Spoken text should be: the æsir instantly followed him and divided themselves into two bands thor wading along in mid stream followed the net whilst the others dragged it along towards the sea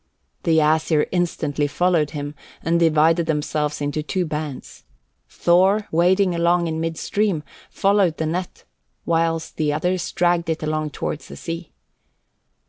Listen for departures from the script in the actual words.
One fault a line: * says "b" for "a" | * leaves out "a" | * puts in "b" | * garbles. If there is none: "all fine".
all fine